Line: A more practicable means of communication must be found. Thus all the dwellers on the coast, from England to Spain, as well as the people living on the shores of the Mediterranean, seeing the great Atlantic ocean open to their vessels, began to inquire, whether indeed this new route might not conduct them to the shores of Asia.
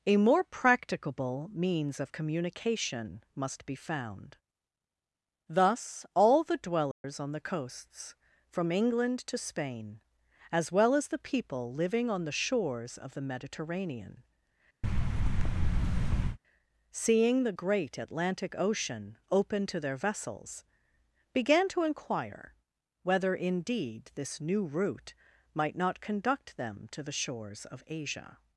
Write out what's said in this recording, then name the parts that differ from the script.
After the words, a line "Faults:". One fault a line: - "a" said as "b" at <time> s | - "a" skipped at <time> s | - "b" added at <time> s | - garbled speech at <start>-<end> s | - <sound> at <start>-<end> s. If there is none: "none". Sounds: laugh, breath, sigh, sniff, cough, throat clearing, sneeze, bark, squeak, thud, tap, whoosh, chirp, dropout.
A more practicable means of communication must be found. Thus all the dwellers on the coasts, from England to Spain, as well as the people living on the shores of the Mediterranean, seeing the great Atlantic ocean open to their vessels, began to inquire, whether indeed this new route might not conduct them to the shores of Asia.
Faults:
- dropout at 6.9-7.0 s
- "coast" said as "coasts" at 7.4 s
- thud at 14.8-16.4 s